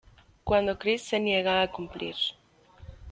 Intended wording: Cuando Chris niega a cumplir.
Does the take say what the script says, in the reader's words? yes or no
no